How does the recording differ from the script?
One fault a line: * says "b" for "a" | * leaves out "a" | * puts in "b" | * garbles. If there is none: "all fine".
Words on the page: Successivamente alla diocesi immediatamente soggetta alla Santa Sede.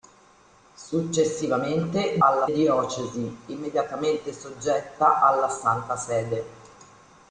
all fine